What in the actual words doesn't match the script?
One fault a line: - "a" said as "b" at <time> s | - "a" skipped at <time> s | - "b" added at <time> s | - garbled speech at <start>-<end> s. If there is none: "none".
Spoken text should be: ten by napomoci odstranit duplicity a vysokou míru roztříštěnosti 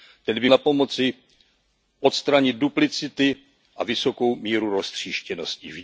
none